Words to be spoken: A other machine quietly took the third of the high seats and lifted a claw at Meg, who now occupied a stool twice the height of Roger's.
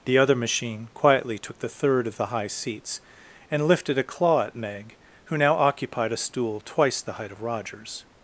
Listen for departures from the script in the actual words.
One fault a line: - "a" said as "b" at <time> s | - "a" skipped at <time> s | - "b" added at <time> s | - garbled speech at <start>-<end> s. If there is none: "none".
- "A" said as "The" at 0.1 s